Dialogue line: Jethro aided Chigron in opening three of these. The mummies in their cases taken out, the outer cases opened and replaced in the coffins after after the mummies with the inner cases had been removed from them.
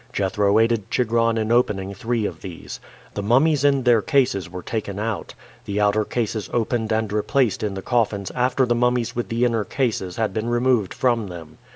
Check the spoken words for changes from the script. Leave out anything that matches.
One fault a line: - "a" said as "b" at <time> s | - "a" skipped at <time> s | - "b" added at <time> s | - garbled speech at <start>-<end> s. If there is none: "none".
- "were" added at 4.5 s
- "after" skipped at 8.7 s